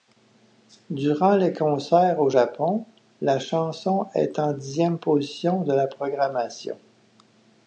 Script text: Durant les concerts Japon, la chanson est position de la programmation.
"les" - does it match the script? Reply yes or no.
yes